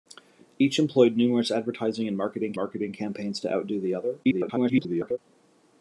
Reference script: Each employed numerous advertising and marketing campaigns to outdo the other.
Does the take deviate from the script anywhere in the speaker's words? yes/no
yes